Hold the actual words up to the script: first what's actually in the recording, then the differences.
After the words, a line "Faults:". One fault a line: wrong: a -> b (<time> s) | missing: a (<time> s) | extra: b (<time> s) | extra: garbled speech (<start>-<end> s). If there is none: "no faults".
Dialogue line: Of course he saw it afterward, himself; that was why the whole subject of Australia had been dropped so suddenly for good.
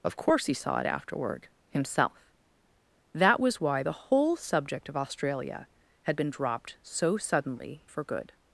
Of course he saw it afterward, himself; that was why the whole subject of Australia had been dropped so suddenly for good.
Faults:
no faults